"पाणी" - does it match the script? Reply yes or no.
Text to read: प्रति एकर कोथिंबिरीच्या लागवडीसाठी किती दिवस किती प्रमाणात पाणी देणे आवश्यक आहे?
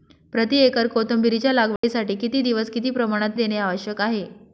no